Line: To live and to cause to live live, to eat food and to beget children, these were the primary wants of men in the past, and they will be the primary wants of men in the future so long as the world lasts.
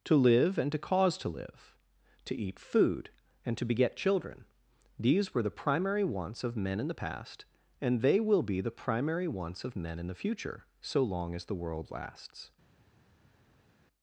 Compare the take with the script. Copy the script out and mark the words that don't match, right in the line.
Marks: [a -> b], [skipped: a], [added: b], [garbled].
To live and to cause to live [skipped: live,] to eat food and to beget children, these were the primary wants of men in the past, and they will be the primary wants of men in the future so long as the world lasts.